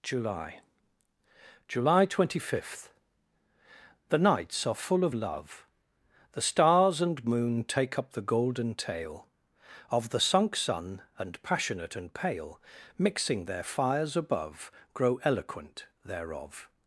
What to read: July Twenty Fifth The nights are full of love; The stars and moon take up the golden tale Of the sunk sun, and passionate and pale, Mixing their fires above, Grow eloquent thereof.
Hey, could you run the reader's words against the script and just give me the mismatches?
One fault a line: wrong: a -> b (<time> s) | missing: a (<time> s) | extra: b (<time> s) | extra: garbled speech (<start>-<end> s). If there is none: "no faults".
extra: july (1.7 s)